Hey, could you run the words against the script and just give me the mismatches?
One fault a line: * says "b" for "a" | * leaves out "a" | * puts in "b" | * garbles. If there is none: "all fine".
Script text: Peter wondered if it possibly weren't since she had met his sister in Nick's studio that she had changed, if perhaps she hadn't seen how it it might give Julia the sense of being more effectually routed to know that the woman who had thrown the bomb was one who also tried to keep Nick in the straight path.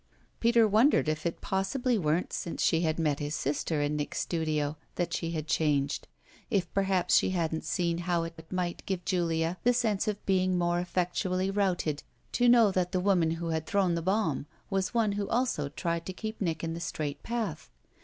all fine